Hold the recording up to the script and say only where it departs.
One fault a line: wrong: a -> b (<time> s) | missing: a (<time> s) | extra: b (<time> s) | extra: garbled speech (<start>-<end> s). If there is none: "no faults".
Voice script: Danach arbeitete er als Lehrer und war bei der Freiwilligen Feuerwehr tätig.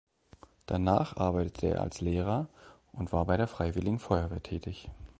no faults